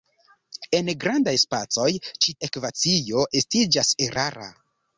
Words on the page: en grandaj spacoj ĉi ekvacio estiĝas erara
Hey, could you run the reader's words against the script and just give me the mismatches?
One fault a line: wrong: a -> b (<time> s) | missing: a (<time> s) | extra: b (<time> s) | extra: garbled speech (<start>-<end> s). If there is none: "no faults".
no faults